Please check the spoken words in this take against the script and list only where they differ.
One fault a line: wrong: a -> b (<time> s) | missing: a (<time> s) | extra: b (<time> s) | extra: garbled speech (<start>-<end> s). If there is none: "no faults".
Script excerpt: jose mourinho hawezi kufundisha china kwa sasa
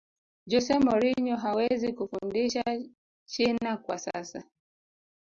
no faults